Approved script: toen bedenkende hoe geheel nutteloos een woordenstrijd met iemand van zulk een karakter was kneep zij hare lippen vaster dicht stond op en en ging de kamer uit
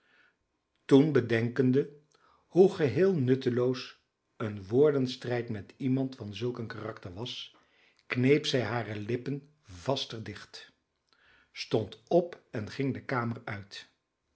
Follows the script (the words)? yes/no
no